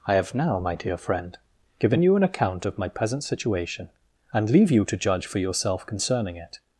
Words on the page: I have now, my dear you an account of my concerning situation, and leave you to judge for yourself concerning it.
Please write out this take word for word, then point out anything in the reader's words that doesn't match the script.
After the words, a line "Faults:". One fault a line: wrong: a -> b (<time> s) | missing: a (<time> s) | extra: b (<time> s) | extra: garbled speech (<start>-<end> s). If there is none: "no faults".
I have now, my dear friend, given you an account of my present situation, and leave you to judge for yourself concerning it.
Faults:
extra: friend given (1.0 s)
wrong: concerning -> present (2.9 s)